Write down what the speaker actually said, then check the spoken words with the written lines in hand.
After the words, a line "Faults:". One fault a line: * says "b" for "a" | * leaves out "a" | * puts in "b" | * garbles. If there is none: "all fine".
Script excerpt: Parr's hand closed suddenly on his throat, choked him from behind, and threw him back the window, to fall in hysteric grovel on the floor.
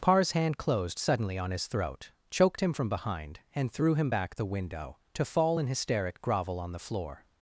Parr's hand closed suddenly on his throat, choked him from behind, and threw him back the window, to fall in hysteric grovel on the floor.
Faults:
all fine